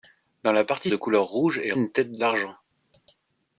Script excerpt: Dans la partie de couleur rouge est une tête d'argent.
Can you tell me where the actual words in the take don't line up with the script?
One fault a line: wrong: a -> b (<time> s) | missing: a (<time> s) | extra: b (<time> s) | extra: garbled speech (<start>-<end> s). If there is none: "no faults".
no faults